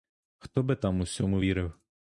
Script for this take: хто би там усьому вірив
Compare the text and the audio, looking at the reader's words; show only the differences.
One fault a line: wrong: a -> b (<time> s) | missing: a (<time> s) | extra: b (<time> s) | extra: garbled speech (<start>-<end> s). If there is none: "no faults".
no faults